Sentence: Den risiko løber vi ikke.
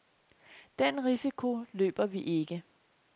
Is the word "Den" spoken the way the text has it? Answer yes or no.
yes